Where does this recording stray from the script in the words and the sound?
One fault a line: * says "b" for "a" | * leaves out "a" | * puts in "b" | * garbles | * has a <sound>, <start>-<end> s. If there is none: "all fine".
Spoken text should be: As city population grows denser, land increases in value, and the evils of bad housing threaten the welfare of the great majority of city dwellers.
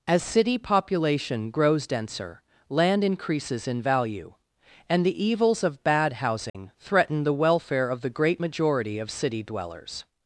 * has a dropout, 6.5-6.5 s